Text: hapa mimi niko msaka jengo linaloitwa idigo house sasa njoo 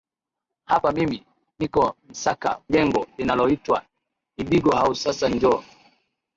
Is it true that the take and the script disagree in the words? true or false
false